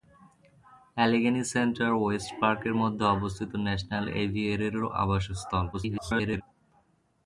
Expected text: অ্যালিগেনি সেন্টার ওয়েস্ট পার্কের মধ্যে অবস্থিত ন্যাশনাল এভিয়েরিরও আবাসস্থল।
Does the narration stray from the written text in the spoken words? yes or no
yes